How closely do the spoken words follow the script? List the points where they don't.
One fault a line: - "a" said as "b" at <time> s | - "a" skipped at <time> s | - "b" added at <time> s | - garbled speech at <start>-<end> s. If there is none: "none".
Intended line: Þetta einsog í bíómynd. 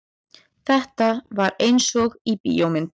- "var" added at 1.4 s